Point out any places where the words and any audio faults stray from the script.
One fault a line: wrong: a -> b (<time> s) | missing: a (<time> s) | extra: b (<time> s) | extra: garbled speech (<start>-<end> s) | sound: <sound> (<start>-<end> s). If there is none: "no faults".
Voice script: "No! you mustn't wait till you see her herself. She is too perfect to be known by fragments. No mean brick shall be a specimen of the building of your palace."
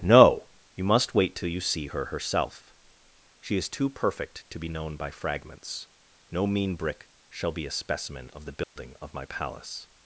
wrong: mustn't -> must (0.8 s)
sound: dropout (8.6-8.8 s)
wrong: your -> my (9.1 s)